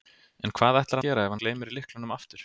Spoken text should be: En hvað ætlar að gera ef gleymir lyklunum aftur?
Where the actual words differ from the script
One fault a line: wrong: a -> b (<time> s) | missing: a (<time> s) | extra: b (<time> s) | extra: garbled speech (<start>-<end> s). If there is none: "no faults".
no faults